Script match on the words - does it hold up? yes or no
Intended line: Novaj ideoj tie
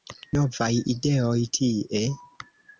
yes